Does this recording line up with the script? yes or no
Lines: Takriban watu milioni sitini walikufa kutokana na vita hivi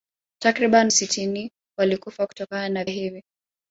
no